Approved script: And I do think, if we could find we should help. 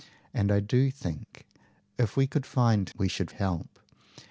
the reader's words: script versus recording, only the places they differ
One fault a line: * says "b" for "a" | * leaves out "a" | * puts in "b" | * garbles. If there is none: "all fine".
all fine